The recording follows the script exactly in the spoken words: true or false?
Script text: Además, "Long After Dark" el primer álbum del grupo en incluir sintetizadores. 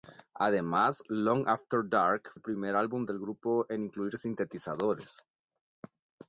true